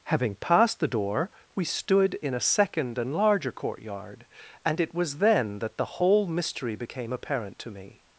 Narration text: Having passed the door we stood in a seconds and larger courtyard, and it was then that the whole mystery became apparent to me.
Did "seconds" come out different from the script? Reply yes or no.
yes